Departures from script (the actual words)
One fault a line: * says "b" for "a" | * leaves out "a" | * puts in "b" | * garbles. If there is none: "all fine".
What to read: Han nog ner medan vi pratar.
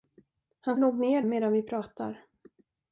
all fine